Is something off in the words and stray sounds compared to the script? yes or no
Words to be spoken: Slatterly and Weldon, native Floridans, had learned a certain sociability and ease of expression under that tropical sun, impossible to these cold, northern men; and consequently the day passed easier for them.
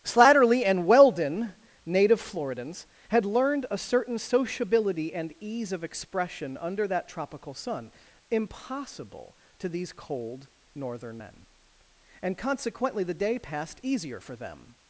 no